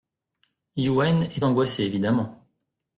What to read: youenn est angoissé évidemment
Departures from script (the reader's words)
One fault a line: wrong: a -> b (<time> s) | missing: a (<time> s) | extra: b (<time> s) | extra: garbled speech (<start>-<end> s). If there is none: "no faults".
no faults